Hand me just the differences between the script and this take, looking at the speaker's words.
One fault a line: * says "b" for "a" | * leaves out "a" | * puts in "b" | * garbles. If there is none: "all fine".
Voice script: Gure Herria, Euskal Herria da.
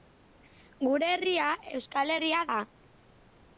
all fine